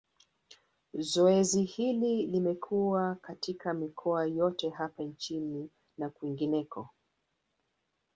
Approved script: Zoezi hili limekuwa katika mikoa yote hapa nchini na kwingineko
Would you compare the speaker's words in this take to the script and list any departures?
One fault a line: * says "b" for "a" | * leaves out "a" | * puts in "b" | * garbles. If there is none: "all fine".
all fine